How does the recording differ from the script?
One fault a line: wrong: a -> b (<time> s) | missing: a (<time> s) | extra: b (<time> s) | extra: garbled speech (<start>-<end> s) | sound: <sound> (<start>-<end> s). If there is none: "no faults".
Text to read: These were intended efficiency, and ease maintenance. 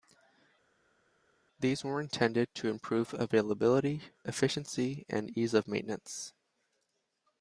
extra: to improve availability (2.6 s)
extra: of (5.5 s)